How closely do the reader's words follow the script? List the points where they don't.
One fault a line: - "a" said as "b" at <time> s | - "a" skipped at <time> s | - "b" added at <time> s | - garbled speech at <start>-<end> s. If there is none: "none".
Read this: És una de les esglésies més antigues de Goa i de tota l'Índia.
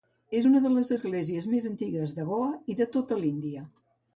none